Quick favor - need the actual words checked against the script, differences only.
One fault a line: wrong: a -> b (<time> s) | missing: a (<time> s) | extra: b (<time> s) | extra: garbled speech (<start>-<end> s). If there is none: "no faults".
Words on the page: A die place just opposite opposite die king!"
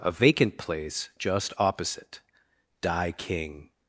wrong: die -> vacant (0.1 s)
missing: opposite (2.2 s)